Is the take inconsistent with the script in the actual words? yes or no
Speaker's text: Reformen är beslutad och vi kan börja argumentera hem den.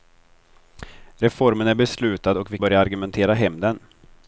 yes